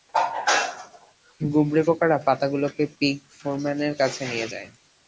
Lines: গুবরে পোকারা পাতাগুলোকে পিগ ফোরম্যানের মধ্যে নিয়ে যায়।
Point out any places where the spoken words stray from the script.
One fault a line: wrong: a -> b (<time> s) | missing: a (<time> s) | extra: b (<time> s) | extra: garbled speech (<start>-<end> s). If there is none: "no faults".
wrong: মধ্যে -> কাছে (4.0 s)